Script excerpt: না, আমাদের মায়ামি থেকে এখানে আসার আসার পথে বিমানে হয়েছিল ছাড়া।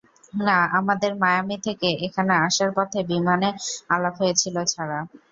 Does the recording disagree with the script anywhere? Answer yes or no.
yes